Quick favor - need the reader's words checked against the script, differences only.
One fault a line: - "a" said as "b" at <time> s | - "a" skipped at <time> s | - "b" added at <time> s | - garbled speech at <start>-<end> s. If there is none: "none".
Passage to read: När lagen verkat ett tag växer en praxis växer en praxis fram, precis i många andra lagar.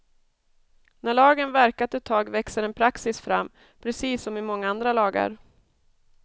- "växer en praxis" skipped at 3.2 s
- "som" added at 4.2 s